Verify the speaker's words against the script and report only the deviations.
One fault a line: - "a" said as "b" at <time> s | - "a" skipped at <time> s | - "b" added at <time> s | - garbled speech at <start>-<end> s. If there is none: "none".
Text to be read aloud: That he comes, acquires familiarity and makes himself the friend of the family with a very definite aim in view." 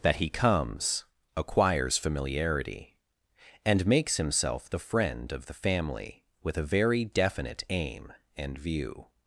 - "in" said as "and" at 8.4 s